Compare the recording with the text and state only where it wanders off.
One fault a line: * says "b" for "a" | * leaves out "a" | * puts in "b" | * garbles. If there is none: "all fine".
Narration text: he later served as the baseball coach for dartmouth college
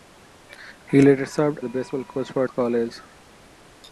* leaves out "as"
* leaves out "dartmouth"